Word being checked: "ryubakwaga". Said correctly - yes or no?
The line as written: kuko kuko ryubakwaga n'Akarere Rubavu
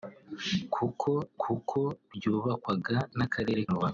yes